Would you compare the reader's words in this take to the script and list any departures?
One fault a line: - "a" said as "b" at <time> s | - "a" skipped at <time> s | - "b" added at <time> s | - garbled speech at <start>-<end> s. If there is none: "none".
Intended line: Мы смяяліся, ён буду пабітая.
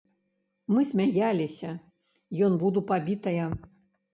none